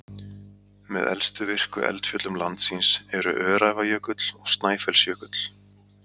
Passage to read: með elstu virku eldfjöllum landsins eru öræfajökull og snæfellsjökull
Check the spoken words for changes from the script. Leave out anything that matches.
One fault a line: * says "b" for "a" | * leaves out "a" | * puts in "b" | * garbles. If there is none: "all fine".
all fine